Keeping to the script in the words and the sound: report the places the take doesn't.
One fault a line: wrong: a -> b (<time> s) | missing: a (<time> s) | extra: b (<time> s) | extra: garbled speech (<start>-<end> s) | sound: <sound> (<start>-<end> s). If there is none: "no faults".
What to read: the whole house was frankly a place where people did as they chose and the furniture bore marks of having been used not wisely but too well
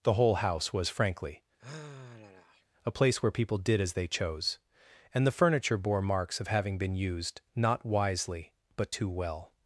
sound: sigh (1.6-2.7 s)